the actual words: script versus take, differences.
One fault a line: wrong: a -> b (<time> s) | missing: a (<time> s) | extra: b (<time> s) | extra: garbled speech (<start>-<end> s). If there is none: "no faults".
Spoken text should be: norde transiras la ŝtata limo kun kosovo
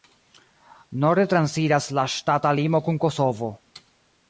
no faults